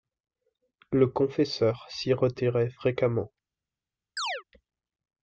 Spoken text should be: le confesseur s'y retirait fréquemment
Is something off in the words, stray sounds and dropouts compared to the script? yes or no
yes